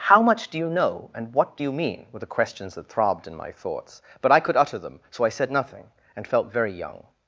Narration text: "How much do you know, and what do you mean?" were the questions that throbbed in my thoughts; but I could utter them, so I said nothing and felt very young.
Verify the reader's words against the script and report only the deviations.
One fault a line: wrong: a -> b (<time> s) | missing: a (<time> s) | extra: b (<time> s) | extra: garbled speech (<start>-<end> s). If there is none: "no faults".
no faults